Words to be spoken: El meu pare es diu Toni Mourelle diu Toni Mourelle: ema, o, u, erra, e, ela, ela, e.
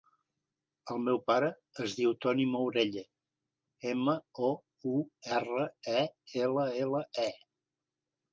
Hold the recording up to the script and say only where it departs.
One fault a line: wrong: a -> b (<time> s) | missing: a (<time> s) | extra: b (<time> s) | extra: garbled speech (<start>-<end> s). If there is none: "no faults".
missing: diu Toni Mourelle (3.0 s)